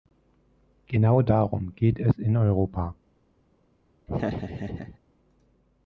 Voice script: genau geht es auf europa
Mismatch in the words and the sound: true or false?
true